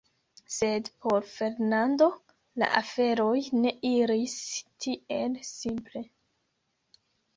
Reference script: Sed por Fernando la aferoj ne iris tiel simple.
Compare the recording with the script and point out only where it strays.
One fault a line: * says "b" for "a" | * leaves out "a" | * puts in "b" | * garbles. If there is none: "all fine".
all fine